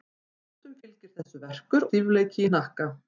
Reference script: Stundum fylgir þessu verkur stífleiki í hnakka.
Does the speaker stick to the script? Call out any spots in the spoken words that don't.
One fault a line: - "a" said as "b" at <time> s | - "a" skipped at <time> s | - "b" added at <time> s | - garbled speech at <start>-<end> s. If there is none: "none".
none